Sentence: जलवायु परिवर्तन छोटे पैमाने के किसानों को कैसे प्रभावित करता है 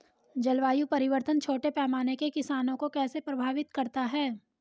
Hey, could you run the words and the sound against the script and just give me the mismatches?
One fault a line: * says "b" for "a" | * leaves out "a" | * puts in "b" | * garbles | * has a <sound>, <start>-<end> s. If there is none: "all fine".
all fine